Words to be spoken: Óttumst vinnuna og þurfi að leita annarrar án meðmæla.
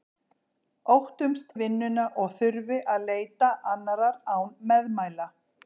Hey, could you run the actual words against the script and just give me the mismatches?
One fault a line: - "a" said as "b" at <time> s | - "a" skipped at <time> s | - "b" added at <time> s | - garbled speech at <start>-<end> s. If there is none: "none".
none